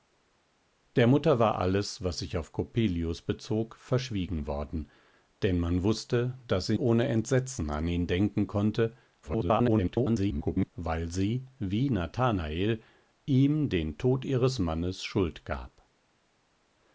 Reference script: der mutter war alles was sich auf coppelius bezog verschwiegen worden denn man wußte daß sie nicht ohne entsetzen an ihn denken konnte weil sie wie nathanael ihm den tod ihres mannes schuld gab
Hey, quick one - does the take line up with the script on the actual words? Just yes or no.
no